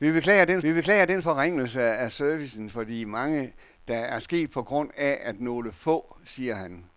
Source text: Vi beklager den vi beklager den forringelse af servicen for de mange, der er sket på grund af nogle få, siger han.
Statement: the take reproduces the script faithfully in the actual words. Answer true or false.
true